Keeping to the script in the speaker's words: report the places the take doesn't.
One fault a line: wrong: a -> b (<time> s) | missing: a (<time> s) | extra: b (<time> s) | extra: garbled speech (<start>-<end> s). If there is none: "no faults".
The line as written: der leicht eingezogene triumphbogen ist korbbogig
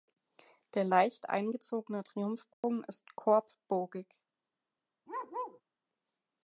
no faults